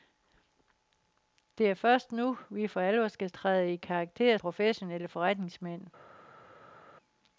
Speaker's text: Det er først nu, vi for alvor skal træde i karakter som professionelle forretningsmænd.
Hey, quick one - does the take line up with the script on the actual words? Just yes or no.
no